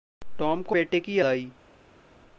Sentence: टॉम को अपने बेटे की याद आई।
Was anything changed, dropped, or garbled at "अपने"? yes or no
yes